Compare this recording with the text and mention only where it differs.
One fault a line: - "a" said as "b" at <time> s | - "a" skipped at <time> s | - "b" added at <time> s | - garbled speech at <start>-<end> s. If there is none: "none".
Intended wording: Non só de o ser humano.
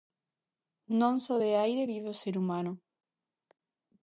- "aire vive" added at 1.6 s